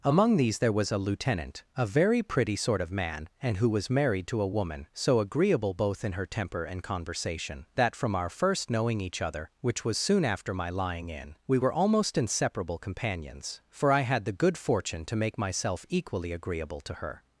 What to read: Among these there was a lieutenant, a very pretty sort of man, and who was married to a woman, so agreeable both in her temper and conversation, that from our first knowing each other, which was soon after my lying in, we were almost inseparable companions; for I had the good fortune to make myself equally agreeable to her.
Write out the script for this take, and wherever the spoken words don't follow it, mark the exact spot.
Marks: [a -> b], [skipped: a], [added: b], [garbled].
Among these there was a lieutenant, a very pretty sort of man, and who was married to a woman, so agreeable both in her temper and conversation, that from our first knowing each other, which was soon after my lying in, we were almost inseparable companions; for I had the good fortune to make myself equally agreeable to her.